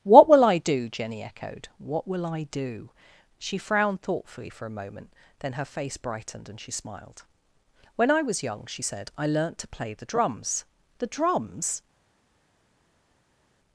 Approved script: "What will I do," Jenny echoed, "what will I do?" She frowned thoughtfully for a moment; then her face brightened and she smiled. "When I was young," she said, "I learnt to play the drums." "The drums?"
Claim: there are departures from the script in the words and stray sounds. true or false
false